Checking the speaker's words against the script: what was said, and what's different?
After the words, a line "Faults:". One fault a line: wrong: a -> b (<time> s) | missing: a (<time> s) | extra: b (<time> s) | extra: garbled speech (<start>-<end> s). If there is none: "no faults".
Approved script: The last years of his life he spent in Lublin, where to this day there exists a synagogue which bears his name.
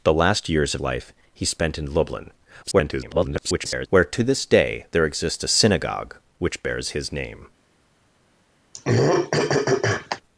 The last years of life he spent in Lublin, [garbled] where to this day there exists a synagogue which bears his name.
Faults:
missing: his (0.8 s)
extra: garbled speech (2.6-3.9 s)